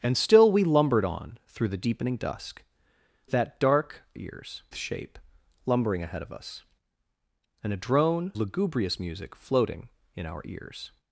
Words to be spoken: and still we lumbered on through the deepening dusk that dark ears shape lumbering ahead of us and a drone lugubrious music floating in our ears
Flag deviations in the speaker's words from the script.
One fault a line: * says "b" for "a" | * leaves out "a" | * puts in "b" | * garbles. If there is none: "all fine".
all fine